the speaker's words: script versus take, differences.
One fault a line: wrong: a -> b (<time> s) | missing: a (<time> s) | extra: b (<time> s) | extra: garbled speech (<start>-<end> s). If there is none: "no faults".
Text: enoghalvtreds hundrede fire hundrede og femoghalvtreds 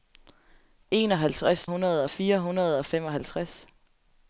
no faults